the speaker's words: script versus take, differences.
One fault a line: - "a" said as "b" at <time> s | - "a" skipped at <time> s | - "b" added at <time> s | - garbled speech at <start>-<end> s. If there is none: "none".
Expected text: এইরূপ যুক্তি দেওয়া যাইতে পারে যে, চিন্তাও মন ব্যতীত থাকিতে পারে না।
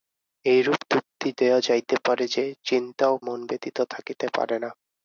none